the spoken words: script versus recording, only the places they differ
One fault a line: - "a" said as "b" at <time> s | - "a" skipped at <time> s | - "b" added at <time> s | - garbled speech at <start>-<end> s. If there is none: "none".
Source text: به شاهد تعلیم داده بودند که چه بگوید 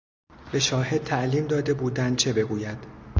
- "که" skipped at 2.2 s